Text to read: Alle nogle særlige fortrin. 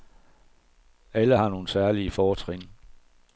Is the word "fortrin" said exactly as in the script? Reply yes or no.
yes